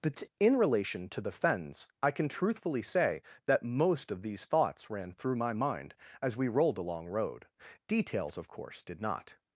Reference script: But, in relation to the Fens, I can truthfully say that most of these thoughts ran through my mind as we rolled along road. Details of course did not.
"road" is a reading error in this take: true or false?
false